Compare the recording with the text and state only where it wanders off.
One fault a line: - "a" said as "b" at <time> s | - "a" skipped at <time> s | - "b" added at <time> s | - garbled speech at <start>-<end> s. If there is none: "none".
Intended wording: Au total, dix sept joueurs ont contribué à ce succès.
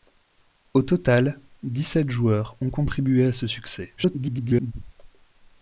- garbled speech at 4.0-4.7 s